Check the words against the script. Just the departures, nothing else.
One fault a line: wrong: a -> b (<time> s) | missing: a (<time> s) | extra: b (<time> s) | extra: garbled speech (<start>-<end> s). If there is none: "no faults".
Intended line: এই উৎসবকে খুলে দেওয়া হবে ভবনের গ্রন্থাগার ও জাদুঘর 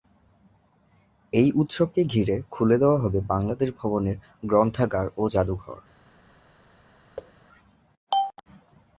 extra: ঘিরে (2.0 s)
extra: বাংলাদেশ (3.3 s)